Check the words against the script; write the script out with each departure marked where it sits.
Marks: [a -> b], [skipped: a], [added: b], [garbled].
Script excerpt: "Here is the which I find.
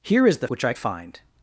"Here is the which I find.